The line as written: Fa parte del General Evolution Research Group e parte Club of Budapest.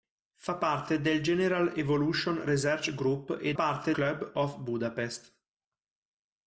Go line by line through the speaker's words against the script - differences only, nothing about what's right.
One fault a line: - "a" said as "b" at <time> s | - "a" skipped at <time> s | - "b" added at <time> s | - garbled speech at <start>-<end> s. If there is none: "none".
none